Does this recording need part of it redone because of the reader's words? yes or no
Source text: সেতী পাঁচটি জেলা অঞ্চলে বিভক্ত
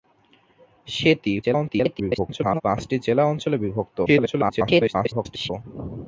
yes